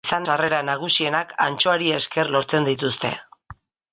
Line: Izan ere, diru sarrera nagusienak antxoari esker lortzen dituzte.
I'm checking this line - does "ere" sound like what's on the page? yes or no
no